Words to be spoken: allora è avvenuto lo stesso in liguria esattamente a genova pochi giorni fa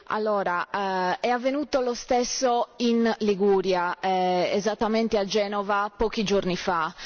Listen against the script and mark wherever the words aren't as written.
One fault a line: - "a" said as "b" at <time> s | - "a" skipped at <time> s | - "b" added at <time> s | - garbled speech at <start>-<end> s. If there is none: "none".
none